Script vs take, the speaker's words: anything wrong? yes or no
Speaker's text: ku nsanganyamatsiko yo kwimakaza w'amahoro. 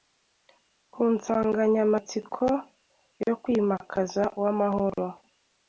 no